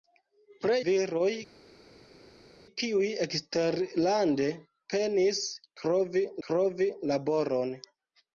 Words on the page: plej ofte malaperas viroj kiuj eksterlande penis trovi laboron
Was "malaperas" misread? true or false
true